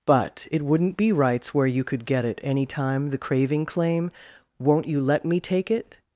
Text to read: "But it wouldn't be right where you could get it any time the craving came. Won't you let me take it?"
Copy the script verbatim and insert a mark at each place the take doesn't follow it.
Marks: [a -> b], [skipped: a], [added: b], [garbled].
"But it wouldn't be [right -> rights] where you could get it any time the craving [came. -> claim] Won't you let me take it?"